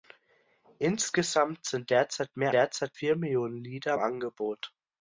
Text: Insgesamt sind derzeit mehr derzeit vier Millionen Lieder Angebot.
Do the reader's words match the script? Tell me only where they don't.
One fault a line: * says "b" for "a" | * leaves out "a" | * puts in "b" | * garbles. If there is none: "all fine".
all fine